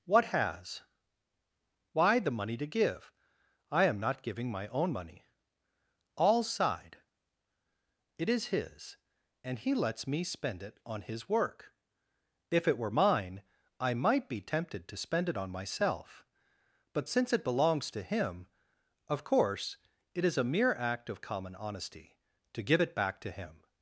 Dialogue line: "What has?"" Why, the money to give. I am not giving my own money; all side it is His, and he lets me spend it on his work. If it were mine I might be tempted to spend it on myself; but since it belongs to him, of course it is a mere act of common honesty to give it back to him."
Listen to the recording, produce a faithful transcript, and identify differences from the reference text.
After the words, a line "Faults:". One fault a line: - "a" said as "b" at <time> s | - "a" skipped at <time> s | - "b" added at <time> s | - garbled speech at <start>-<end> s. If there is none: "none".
"What has?"" Why, the money to give. I am not giving my own money; all side it is His, and he lets me spend it on his work. If it were mine I might be tempted to spend it on myself; but since it belongs to him, of course it is a mere act of common honesty to give it back to him."
Faults:
none